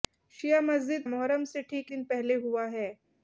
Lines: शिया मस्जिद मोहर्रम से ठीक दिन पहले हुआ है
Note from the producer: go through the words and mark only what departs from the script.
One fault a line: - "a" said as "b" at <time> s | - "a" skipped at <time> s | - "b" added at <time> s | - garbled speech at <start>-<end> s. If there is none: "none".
none